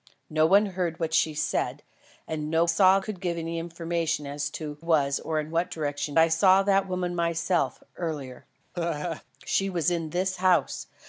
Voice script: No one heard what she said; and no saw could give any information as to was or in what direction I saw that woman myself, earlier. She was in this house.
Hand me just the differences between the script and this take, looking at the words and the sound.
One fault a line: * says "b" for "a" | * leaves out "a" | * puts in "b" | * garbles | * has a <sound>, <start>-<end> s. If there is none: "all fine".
* has a laugh, 8.7-9.2 s